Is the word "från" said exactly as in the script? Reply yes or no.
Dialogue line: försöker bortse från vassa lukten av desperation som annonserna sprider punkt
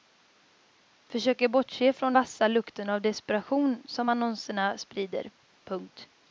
yes